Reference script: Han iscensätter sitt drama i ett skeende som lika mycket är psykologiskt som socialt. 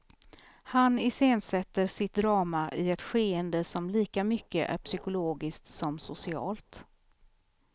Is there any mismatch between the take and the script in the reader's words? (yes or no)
no